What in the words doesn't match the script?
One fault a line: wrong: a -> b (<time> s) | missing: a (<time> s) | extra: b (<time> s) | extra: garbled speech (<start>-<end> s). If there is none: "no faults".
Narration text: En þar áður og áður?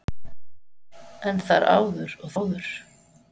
no faults